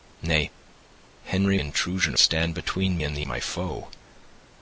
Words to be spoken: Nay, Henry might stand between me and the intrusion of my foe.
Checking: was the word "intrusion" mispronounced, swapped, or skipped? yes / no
yes